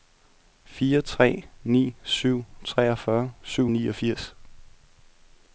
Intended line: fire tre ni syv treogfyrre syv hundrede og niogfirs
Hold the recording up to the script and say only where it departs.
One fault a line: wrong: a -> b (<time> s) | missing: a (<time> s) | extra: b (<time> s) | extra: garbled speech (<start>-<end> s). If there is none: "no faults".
missing: hundrede (3.7 s)